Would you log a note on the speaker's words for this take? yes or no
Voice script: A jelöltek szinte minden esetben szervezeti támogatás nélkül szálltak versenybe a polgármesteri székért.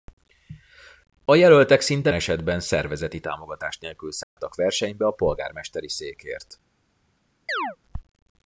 yes